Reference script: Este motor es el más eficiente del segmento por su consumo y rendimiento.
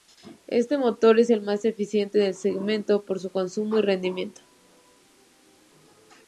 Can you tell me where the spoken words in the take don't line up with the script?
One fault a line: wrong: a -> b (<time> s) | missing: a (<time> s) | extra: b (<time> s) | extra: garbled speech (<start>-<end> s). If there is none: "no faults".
no faults